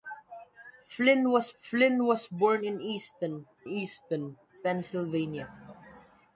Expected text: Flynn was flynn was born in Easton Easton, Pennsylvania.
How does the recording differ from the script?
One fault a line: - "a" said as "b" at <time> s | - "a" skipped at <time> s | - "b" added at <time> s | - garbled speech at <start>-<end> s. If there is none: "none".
none